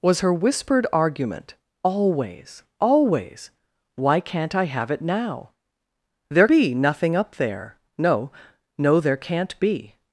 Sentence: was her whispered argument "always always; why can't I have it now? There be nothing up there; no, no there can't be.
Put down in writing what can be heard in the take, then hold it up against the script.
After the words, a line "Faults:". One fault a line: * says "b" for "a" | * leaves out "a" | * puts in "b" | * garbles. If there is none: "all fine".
was her whispered argument "always always; why can't I have it now? There be nothing up there; no, no there can't be.
Faults:
all fine